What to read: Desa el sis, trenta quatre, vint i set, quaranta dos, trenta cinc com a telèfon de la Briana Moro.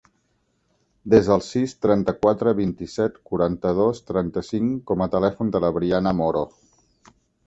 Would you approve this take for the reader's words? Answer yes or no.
yes